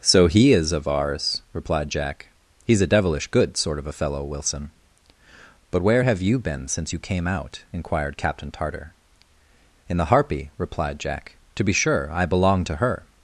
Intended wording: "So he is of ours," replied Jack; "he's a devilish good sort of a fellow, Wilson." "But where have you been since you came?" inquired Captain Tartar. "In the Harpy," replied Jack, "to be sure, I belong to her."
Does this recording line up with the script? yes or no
no